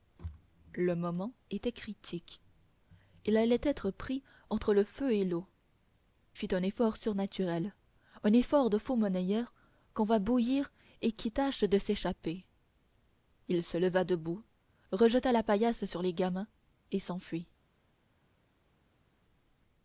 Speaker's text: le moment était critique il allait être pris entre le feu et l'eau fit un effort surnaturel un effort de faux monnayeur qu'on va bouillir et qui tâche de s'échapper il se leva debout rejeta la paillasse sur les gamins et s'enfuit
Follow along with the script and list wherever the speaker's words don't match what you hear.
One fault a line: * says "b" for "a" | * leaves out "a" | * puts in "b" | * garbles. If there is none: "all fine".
all fine